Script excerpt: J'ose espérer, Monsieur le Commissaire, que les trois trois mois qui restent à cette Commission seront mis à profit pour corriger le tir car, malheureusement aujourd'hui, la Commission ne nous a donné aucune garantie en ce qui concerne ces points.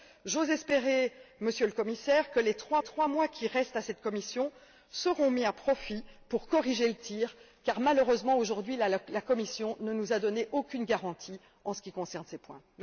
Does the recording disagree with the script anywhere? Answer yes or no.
no